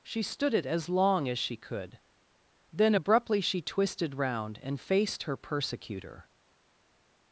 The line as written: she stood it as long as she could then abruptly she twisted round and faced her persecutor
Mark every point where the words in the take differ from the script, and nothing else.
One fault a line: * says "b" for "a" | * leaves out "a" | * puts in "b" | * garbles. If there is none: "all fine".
all fine